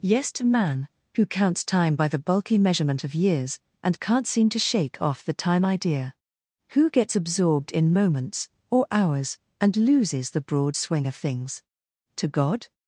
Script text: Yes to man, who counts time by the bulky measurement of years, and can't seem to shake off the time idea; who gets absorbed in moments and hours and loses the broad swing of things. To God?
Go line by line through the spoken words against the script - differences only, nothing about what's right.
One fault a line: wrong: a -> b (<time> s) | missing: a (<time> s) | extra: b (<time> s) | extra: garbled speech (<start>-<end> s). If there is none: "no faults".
wrong: and -> or (8.7 s)